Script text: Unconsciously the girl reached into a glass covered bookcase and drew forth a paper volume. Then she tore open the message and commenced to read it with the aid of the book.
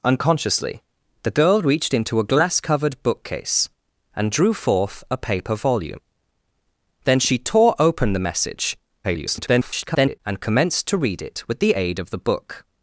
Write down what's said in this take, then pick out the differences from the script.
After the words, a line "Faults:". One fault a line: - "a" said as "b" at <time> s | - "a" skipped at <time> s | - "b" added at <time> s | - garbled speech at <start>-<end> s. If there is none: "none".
Unconsciously the girl reached into a glass covered bookcase and drew forth a paper volume. Then she tore open the message [garbled] and commenced to read it with the aid of the book.
Faults:
- garbled speech at 9.0-10.2 s